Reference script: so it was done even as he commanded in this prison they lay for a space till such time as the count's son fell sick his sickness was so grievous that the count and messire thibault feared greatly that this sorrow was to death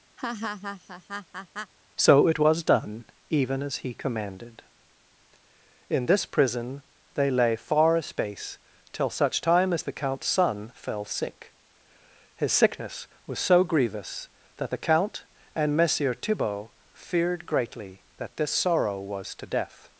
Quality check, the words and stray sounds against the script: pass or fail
fail